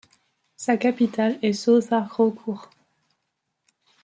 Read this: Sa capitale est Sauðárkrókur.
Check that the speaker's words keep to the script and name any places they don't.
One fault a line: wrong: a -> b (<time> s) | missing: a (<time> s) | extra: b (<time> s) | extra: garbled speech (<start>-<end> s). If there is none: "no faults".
no faults